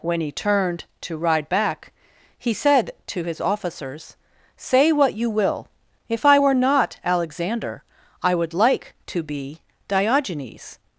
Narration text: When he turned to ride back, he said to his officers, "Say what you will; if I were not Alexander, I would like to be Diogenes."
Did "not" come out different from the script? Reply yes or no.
no